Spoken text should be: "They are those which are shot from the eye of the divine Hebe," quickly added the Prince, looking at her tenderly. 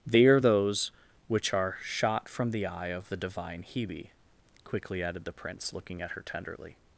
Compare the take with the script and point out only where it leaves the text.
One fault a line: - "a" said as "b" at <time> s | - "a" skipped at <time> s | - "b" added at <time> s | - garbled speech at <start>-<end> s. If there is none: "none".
none